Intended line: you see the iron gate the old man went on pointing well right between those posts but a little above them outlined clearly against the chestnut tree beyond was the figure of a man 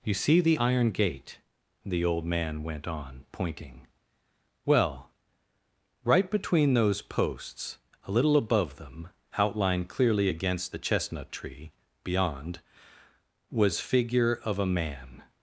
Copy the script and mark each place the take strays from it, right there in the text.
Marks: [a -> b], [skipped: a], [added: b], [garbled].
you see the iron gate the old man went on pointing well right between those posts [skipped: but] a little above them outlined clearly against the chestnut tree beyond was [skipped: the] figure of a man